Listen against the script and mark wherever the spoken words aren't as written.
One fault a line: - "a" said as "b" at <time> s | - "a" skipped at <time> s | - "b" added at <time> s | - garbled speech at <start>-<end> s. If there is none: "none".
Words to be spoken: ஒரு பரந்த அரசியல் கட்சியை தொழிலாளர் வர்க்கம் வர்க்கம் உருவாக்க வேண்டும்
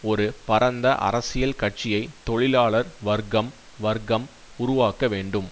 none